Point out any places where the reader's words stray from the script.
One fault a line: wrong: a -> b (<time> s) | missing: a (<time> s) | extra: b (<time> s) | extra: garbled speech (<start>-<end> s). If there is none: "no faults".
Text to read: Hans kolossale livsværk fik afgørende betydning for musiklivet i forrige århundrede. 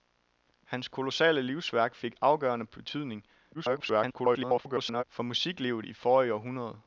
extra: garbled speech (3.5-5.0 s)